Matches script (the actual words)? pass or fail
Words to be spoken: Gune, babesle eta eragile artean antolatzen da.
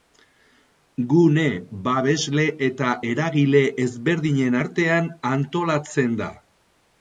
fail